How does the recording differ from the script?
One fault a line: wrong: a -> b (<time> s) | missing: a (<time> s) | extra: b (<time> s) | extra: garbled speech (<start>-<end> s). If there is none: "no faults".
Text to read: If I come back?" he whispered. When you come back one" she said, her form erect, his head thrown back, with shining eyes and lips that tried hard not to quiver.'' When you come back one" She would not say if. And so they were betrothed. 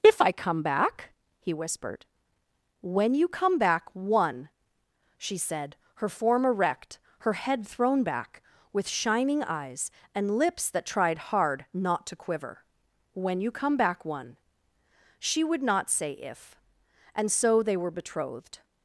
wrong: his -> her (7.2 s)